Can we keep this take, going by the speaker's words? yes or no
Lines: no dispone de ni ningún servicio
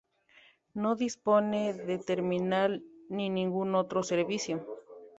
no